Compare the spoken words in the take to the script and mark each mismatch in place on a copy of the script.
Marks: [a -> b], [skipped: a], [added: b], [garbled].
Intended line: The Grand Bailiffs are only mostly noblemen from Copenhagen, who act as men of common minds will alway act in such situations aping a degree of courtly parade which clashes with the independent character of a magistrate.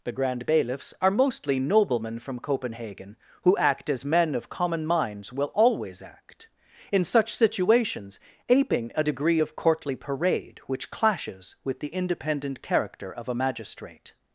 The Grand Bailiffs are [skipped: only] mostly noblemen from Copenhagen, who act as men of common minds will [alway -> always] act in such situations aping a degree of courtly parade which clashes with the independent character of a magistrate.